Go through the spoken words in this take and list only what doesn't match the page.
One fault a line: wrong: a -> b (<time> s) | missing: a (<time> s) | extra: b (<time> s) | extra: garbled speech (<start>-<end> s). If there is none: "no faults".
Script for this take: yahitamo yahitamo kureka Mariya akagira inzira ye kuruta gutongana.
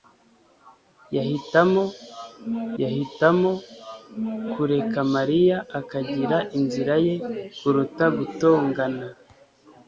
no faults